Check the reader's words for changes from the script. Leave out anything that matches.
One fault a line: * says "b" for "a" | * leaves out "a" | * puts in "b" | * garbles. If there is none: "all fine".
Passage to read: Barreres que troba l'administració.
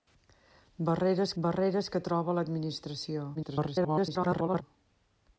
* puts in "barreres"
* garbles